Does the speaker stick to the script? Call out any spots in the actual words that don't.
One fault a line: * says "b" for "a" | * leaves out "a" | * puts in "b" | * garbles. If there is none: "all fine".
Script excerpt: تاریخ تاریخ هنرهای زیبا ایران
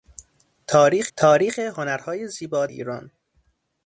all fine